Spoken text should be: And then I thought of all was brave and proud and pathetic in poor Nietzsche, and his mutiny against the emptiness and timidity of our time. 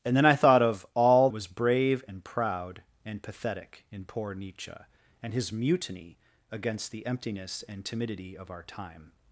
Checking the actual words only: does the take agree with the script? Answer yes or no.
yes